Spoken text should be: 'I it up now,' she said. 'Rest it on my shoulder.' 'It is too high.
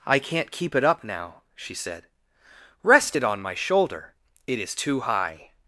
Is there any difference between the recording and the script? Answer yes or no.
yes